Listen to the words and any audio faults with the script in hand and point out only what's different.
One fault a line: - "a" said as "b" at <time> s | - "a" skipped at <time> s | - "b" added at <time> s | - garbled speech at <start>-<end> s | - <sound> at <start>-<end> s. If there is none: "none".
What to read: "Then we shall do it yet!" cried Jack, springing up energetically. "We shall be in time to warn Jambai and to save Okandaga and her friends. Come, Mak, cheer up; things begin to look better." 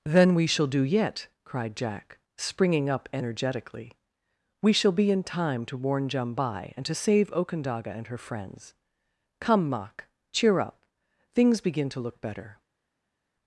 - "it" skipped at 0.8 s